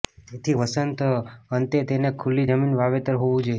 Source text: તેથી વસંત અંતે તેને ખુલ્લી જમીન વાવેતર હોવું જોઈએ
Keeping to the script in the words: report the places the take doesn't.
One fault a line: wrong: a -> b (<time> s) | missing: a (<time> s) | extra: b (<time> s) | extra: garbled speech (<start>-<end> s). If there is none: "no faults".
no faults